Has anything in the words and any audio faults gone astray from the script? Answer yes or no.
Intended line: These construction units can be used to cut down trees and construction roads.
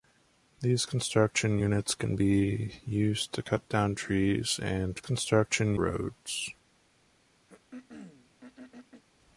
yes